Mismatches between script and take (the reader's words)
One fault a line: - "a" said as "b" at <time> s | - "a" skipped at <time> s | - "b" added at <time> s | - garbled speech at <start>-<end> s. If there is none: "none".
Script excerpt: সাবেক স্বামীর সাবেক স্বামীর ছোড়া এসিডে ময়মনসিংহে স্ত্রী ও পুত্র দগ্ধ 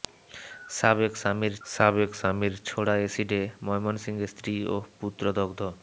none